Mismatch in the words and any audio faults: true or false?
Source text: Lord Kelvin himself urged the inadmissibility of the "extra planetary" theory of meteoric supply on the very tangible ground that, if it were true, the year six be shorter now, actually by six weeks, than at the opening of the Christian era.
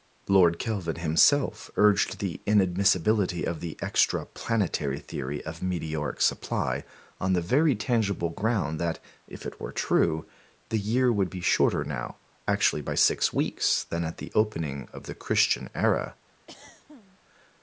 true